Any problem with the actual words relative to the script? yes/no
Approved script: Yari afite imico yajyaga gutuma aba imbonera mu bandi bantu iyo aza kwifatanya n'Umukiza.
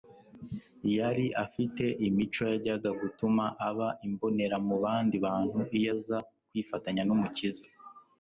no